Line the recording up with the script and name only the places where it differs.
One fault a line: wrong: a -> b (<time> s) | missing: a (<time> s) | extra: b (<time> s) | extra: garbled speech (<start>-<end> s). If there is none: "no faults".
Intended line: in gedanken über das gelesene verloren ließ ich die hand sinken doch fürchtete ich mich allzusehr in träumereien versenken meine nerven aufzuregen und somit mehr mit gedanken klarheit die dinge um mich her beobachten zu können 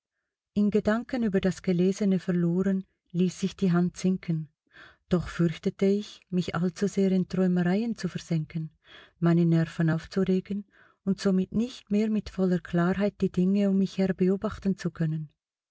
extra: zu (8.0 s)
extra: nicht (11.5 s)
wrong: gedanken -> voller (12.3 s)